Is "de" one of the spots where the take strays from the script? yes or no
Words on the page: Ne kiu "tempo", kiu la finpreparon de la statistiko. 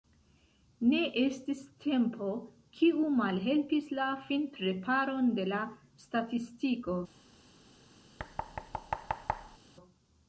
no